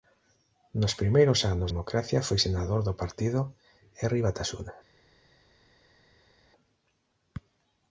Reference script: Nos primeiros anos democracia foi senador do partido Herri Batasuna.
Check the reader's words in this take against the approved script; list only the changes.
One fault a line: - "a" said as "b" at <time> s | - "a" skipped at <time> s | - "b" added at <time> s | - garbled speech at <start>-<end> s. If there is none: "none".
none